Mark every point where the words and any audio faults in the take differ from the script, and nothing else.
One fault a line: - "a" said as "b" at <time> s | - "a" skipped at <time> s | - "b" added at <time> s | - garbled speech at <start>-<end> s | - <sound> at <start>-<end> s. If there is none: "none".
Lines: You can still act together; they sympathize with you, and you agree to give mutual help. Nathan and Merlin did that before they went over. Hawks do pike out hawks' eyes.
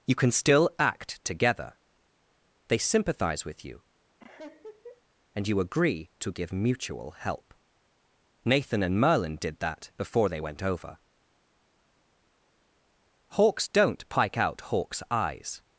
- laugh at 4.2-5.0 s
- "do" said as "don't" at 13.7 s